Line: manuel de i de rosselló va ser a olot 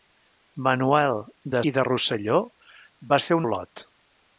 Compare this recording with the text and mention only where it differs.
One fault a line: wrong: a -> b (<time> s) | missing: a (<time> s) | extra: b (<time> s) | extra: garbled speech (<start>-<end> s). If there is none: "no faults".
no faults